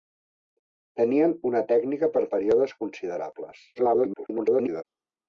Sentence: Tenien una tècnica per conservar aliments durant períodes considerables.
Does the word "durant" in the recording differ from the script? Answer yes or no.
yes